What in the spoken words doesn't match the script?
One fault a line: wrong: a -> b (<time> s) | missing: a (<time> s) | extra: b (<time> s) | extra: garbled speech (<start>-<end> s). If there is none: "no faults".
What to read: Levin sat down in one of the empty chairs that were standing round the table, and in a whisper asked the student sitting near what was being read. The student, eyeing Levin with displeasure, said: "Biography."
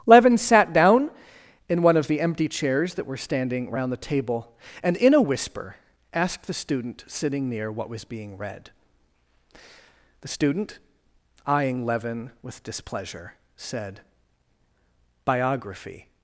no faults